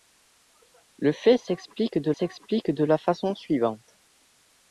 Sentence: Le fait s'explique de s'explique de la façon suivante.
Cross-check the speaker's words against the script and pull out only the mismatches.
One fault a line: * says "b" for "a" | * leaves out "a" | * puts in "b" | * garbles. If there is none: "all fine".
all fine